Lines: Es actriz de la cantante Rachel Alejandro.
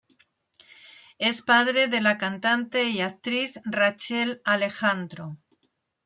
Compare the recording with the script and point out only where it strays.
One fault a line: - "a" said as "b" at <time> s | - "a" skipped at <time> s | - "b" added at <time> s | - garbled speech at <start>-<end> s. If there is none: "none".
- "actriz" said as "padre" at 1.4 s
- "y actriz" added at 2.9 s